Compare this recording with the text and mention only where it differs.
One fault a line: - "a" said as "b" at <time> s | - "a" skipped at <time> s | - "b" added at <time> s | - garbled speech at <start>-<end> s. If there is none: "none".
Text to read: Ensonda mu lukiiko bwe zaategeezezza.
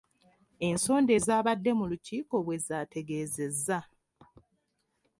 - "ezaabadde" added at 1.2 s